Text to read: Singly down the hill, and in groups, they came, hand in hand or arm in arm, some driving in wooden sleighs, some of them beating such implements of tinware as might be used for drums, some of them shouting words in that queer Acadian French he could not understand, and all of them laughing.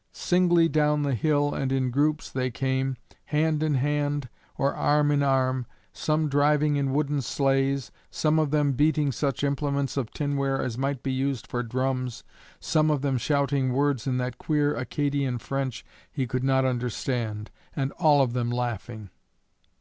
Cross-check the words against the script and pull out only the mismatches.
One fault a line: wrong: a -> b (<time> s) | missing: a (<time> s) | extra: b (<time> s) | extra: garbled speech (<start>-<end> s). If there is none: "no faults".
no faults